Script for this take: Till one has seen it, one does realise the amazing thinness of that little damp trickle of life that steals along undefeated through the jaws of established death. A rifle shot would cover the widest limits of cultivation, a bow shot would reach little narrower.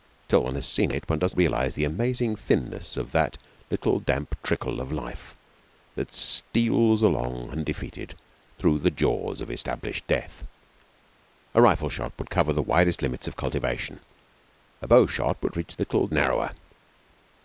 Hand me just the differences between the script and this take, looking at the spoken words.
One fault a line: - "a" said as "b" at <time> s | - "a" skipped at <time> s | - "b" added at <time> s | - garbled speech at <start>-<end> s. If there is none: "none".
none